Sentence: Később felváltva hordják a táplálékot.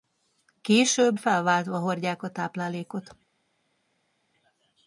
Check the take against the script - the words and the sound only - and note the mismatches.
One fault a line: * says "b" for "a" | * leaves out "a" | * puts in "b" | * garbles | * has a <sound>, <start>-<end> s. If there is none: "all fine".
all fine